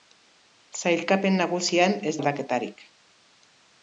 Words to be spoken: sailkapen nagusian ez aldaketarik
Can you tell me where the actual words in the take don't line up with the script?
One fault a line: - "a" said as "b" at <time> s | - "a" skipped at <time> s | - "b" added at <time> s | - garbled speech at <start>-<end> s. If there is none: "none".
none